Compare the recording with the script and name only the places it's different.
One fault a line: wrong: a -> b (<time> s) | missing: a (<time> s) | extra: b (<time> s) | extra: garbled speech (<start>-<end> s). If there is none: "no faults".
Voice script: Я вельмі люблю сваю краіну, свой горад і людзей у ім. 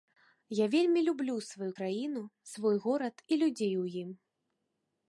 no faults